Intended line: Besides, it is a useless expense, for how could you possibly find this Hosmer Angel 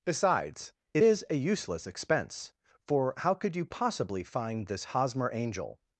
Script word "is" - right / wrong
right